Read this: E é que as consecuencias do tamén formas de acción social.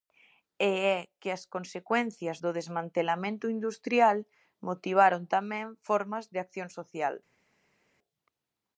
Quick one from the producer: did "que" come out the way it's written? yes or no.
yes